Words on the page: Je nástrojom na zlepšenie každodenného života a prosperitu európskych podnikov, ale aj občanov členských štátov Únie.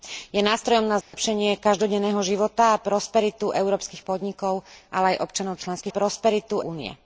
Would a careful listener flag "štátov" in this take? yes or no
yes